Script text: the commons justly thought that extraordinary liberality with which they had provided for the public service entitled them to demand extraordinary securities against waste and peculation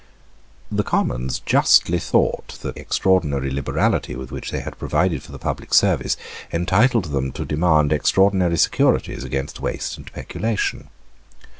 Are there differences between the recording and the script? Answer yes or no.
no